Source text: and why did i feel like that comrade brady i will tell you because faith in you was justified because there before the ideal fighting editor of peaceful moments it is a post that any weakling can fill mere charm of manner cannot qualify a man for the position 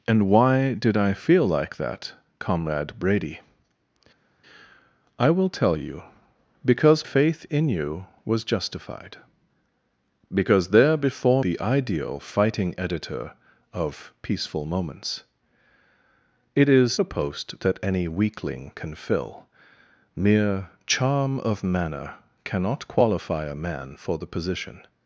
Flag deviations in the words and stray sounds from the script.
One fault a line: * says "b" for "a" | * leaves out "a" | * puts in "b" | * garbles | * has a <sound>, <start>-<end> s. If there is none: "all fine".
all fine